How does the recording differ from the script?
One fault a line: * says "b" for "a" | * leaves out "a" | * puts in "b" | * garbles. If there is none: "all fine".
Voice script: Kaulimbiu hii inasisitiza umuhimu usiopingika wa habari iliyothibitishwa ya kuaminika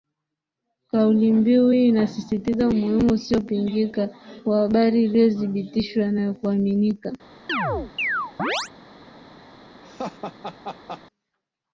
* puts in "na"